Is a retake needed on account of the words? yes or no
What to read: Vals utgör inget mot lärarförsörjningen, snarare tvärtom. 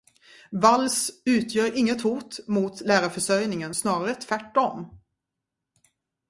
yes